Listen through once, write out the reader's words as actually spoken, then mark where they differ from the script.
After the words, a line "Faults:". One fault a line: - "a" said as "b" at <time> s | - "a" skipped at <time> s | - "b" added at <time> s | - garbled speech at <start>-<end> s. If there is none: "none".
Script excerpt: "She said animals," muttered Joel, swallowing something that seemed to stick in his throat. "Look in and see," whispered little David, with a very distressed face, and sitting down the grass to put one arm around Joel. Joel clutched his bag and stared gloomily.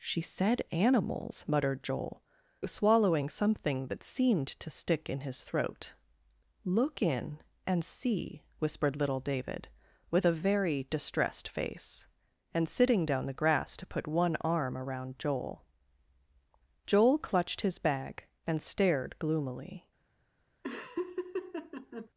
"She said animals," muttered Joel, swallowing something that seemed to stick in his throat. "Look in and see," whispered little David, with a very distressed face, and sitting down the grass to put one arm around Joel. Joel clutched his bag and stared gloomily.
Faults:
none